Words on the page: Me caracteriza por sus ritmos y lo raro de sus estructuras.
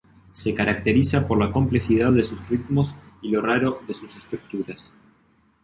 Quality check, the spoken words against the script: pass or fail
fail